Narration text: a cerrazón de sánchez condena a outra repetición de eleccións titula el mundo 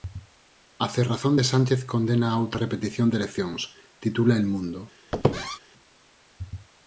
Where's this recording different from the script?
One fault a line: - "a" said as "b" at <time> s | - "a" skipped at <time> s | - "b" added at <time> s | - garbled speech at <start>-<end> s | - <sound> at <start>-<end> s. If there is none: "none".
- squeak at 5.1-5.6 s